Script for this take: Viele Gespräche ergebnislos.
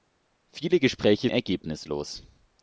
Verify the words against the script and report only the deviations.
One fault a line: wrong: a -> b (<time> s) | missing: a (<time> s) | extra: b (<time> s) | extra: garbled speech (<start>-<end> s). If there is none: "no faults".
no faults